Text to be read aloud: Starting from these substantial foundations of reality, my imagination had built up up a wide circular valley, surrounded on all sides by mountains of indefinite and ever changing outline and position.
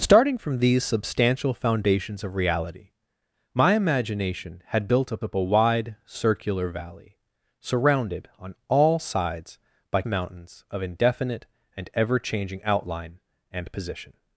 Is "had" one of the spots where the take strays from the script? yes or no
no